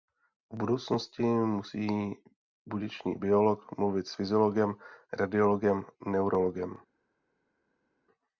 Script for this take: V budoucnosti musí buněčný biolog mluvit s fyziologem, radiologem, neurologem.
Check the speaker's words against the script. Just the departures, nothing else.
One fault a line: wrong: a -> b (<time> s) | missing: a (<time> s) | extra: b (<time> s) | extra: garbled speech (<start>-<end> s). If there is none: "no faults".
no faults